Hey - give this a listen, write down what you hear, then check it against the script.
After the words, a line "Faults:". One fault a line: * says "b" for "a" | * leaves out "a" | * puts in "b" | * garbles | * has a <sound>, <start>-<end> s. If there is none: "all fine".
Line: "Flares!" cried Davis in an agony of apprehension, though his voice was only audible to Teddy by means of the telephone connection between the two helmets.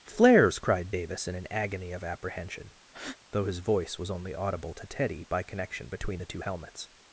"Flares!" cried Davis in an agony of apprehension, though his voice was only audible to Teddy by connection between the two helmets.
Faults:
* has a breath, 2.9-3.2 s
* leaves out "means of the telephone"